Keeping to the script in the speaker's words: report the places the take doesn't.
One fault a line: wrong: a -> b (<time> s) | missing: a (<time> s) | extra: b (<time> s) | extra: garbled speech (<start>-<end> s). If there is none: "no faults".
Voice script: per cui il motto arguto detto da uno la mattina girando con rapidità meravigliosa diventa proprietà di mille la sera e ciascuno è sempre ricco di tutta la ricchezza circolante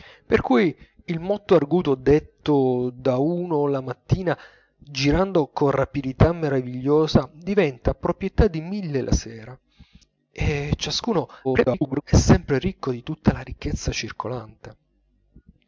extra: garbled speech (11.4-12.0 s)